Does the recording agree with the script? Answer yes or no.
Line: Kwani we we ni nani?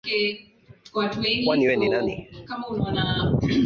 no